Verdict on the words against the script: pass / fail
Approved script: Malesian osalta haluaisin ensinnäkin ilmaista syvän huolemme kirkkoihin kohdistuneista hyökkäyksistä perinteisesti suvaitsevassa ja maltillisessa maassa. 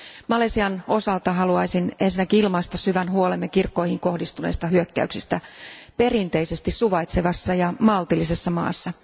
pass